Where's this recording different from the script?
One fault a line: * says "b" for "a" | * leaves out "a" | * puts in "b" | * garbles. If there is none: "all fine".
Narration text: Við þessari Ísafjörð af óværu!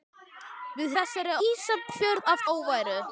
all fine